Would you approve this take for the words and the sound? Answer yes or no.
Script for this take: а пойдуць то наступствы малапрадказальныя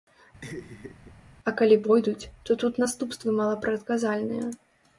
no